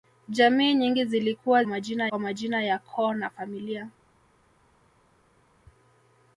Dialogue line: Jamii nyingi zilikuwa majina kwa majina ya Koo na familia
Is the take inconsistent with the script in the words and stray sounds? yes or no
no